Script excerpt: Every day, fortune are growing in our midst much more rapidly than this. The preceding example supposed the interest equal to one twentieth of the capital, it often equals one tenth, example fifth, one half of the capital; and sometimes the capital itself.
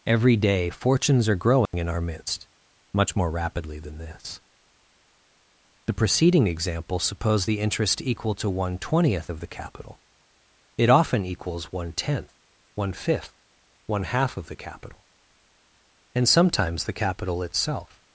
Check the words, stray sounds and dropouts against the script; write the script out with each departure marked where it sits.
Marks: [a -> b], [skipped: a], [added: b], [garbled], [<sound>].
Every day, [fortune -> fortunes] are growing [dropout] in our midst much more rapidly than this. The preceding example supposed the interest equal to one twentieth of the capital, it often equals one tenth, [example -> one] fifth, one half of the capital; and sometimes the capital itself.